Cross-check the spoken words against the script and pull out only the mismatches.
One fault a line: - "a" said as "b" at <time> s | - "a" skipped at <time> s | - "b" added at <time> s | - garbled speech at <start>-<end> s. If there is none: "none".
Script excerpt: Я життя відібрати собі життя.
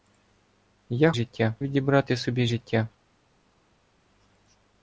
none